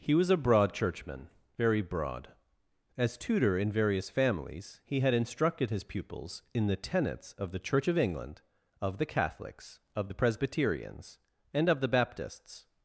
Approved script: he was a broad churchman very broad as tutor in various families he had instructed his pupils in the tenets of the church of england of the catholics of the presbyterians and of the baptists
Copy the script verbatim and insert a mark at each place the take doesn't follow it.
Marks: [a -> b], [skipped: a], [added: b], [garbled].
he was a broad churchman very broad as tutor in various families he had instructed his pupils in the tenets of the church of england of the catholics of the presbyterians and of the baptists